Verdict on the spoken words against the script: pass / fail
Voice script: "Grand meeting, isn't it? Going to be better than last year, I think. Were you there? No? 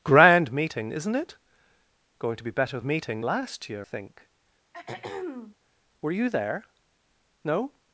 fail